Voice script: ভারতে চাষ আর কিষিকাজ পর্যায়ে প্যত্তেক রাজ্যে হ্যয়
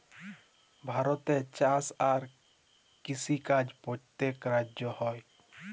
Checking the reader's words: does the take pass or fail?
fail